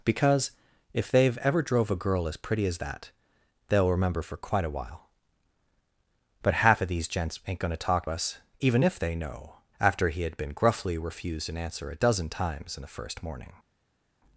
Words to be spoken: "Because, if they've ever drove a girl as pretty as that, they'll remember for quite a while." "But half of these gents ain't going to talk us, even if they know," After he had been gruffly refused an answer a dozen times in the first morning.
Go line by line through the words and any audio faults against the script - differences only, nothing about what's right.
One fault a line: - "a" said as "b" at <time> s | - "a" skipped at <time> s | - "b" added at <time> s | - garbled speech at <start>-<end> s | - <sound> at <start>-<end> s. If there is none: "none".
none